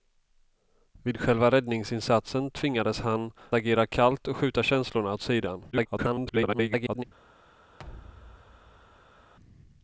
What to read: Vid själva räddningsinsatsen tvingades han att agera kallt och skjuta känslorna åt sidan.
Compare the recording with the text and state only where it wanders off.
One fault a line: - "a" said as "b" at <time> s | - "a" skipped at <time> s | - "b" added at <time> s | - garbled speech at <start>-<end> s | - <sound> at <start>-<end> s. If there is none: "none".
- "att" skipped at 3.3 s
- garbled speech at 5.7-7.0 s
- thud at 7.8-9.3 s